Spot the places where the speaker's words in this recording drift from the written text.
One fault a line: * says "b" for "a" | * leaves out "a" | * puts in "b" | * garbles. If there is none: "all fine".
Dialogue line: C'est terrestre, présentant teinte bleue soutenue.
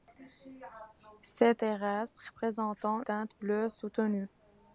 all fine